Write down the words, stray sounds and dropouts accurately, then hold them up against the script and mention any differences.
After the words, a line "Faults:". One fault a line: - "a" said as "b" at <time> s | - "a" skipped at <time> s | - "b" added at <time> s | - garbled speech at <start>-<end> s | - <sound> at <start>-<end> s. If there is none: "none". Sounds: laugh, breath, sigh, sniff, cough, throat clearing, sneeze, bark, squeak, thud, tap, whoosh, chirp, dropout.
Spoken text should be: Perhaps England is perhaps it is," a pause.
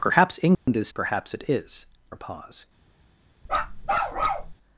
Perhaps England is perhaps it is," a pause.
Faults:
- dropout at 0.5-0.7 s
- bark at 3.5-4.5 s